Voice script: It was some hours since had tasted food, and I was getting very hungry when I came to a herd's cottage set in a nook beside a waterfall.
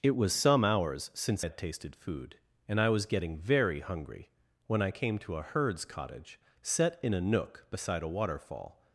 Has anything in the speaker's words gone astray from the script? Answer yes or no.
no